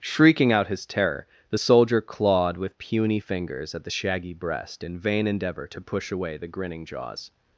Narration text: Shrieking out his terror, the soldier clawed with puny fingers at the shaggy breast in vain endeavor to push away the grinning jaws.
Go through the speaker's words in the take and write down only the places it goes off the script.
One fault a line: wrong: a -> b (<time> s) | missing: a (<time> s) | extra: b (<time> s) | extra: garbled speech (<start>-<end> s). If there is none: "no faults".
no faults